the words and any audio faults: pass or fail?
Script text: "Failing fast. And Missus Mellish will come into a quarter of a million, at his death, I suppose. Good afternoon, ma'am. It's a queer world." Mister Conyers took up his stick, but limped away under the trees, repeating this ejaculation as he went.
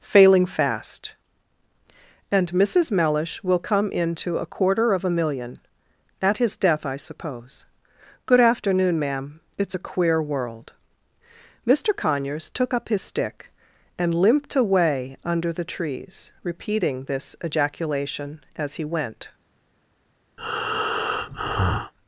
fail